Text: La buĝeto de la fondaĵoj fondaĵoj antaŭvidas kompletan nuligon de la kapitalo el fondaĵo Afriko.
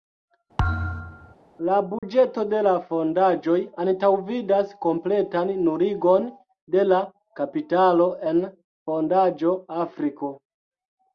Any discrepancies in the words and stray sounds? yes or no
yes